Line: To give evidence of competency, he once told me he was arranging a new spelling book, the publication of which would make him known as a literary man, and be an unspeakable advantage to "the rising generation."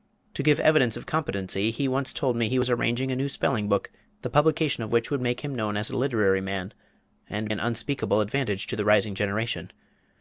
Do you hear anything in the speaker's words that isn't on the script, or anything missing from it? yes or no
yes